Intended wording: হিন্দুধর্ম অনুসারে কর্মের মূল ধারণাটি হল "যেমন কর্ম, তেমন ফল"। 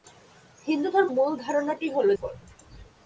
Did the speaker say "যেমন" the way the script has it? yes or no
no